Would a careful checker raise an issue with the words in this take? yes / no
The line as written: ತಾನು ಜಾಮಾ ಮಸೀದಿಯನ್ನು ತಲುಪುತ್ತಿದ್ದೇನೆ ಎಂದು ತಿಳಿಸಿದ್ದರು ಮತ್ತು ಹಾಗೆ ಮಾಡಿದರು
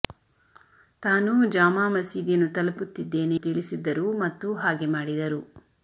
yes